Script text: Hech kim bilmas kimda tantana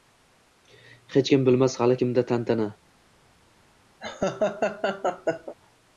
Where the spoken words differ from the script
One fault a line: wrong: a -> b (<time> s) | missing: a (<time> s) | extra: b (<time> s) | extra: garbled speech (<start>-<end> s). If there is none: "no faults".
extra: hali (1.8 s)